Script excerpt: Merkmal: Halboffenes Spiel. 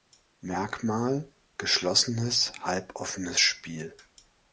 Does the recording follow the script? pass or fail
fail